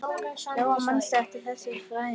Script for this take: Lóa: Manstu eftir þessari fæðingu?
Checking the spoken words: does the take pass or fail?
pass